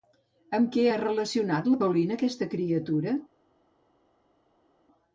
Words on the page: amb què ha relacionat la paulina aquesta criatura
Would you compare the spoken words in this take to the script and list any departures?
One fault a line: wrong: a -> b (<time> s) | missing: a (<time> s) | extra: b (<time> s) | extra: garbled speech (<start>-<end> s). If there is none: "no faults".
no faults